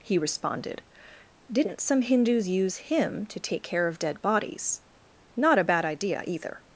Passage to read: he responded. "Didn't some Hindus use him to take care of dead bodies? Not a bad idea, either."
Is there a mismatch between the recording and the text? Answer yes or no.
no